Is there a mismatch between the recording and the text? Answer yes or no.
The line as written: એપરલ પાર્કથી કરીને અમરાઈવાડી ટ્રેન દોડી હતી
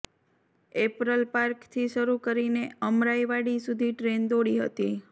yes